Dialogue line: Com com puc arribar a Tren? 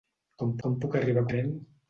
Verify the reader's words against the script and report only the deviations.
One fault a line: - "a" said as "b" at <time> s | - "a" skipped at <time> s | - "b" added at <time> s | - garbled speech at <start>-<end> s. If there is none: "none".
none